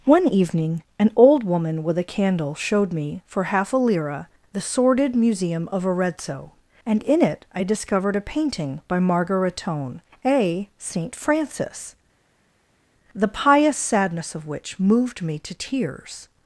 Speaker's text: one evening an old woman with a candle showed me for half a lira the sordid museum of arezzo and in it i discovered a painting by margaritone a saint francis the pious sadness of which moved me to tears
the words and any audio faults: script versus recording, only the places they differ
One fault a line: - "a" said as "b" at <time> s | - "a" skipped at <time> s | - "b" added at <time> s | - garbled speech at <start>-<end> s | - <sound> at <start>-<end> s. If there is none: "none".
none